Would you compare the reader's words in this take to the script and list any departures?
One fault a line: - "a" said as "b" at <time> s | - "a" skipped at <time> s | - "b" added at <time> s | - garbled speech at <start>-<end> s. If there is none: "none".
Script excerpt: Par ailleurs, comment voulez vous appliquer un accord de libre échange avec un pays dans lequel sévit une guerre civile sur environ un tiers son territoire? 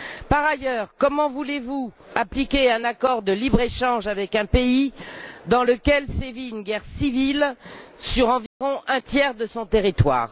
- "de" added at 9.3 s